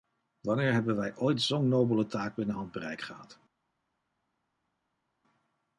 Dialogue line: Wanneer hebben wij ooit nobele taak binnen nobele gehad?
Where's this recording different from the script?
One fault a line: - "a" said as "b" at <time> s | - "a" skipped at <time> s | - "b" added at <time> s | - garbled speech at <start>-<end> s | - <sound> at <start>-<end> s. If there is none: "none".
- "zo'n" added at 1.4 s
- "nobele" said as "handbereik" at 2.5 s